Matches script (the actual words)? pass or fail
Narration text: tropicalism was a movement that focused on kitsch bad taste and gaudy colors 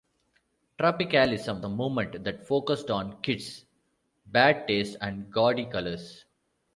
fail